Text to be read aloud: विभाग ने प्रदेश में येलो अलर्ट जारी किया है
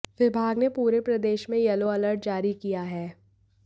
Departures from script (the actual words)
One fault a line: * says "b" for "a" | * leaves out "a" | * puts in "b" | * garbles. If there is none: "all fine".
* puts in "पूरे"